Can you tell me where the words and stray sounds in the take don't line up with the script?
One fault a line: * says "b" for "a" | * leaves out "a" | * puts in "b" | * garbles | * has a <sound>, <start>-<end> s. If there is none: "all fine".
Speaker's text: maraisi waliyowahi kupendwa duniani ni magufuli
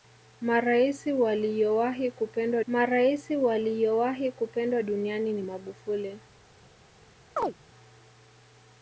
* puts in "maraisi waliyowahi kupendwa"
* has a chirp, 7.4-7.5 s